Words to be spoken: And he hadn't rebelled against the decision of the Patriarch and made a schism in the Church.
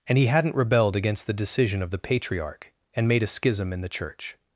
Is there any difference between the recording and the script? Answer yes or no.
no